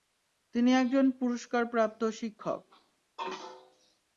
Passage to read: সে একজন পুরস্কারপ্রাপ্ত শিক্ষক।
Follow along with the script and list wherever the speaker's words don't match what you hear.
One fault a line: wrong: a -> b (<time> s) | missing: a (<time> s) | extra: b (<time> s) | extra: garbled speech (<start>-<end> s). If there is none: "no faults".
wrong: সে -> তিনি (0.6 s)